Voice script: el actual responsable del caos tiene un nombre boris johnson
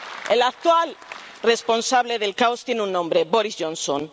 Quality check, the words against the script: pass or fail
pass